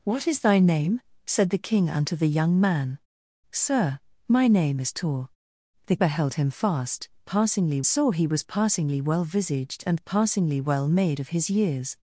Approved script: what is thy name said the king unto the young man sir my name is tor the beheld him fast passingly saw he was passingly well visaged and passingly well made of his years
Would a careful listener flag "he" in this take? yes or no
no